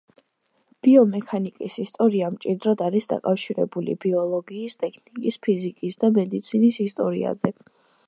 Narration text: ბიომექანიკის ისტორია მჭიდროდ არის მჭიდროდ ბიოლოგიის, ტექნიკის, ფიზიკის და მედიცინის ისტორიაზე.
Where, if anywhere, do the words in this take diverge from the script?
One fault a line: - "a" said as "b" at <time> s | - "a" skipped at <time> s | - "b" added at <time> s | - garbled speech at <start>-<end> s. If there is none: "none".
- "მჭიდროდ" said as "დაკავშირებული" at 3.1 s